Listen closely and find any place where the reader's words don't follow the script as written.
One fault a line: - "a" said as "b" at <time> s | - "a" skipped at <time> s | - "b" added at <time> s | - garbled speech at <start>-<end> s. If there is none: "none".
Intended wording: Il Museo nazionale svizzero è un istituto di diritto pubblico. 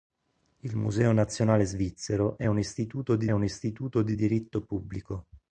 - "un istituto di" added at 3.3 s